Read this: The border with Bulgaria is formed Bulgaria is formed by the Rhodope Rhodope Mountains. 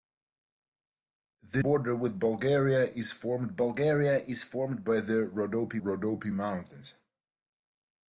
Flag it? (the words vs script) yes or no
no